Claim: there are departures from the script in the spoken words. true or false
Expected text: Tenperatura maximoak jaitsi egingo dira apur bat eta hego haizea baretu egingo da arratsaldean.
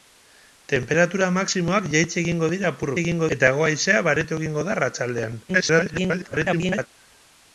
true